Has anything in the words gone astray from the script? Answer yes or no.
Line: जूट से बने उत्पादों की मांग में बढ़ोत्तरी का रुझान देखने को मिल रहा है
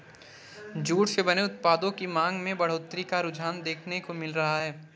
no